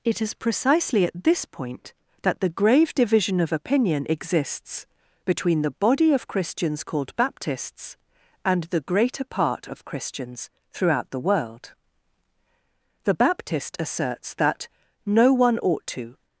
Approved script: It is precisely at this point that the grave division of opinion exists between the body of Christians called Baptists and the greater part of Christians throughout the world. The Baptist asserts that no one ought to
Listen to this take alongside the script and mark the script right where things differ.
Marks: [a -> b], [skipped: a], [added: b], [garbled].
It is precisely at this point that the grave division of opinion exists between the body of Christians called Baptists and the greater part of Christians throughout the world. The Baptist asserts that no one ought to